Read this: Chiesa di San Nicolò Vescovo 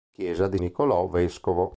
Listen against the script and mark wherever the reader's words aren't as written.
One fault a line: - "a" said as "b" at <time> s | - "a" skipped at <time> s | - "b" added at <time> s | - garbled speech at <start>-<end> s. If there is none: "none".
- "San" skipped at 0.6 s